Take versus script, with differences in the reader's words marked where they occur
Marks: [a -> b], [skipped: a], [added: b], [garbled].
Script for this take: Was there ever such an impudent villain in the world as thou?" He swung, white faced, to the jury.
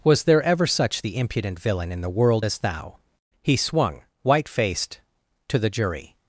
Was there ever such [an -> the] impudent villain in the world as thou?" He swung, white faced, to the jury.